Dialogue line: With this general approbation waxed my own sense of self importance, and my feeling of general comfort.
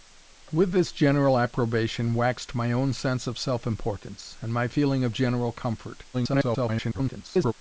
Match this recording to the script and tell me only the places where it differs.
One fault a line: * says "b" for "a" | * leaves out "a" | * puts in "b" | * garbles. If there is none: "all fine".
* garbles